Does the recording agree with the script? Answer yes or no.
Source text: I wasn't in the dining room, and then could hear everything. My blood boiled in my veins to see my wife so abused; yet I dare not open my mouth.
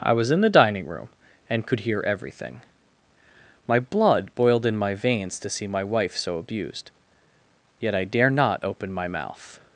no